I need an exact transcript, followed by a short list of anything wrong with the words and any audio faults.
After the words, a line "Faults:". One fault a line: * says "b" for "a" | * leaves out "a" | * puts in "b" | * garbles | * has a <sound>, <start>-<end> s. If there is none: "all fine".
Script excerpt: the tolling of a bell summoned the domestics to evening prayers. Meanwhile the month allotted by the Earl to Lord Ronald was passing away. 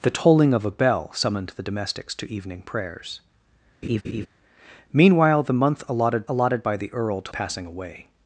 the tolling of a bell summoned the domestics to evening prayers. Meanwhile the month allotted allotted by the Earl to Passing away.
Faults:
* has a laugh, 3.8-4.3 s
* puts in "allotted"
* leaves out "Lord Ronald was"